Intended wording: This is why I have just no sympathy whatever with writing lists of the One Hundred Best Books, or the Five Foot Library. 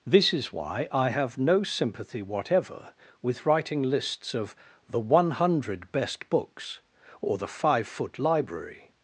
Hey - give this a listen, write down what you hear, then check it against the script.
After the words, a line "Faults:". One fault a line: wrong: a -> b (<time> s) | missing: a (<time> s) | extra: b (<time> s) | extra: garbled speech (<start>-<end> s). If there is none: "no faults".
This is why I have no sympathy whatever with writing lists of the One Hundred Best Books, or the Five Foot Library.
Faults:
missing: just (1.4 s)